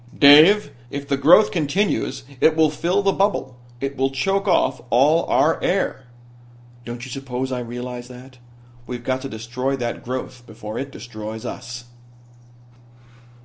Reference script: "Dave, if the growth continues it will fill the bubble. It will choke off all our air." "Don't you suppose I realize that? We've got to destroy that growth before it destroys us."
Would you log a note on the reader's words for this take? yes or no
no